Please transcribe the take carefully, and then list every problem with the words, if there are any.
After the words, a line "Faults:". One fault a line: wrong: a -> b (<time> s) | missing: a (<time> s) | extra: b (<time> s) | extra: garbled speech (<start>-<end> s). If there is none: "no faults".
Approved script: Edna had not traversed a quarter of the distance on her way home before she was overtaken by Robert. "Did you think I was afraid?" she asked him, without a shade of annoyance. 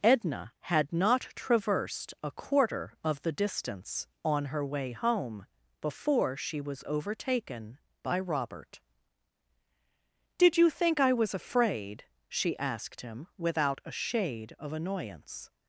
Edna had not traversed a quarter of the distance on her way home before she was overtaken by Robert. "Did you think I was afraid?" she asked him, without a shade of annoyance.
Faults:
no faults